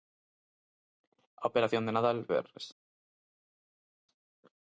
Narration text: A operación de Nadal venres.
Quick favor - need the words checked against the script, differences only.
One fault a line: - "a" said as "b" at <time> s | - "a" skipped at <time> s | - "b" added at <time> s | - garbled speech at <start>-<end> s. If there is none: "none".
none